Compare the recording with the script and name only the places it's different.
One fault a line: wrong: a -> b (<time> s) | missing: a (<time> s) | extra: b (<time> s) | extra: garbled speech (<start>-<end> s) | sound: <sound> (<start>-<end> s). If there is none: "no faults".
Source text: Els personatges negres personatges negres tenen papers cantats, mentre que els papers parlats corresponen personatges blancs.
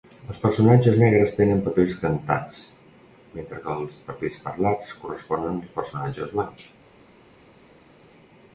missing: personatges negres (1.4 s)
extra: als (5.6 s)